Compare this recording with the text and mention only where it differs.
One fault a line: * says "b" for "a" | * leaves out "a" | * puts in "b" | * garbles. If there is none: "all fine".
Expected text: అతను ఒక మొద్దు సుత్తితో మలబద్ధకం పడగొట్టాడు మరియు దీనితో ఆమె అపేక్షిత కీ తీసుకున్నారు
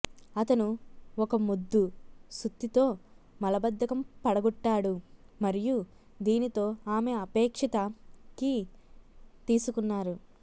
all fine